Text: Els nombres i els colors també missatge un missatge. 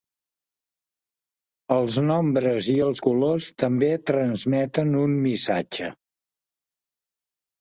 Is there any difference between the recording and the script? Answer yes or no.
yes